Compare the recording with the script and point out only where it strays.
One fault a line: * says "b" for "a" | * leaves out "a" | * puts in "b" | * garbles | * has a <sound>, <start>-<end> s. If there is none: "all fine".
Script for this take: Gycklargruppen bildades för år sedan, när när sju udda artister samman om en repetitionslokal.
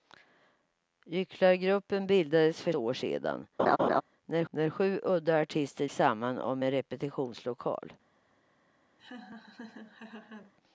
* has a laugh, 3.6-4.0 s
* has a laugh, 9.0-10.5 s